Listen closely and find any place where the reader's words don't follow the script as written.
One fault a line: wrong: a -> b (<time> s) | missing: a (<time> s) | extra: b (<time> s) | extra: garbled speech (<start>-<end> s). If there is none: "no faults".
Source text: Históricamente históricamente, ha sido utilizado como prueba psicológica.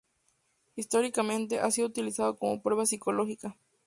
missing: históricamente (1.6 s)